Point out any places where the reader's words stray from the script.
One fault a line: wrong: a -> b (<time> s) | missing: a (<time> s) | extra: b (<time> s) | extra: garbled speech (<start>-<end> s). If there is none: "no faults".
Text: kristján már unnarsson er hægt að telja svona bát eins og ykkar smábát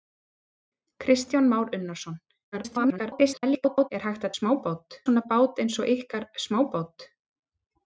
extra: garbled speech (2.5-3.9 s)
wrong: telja -> smábát (4.4 s)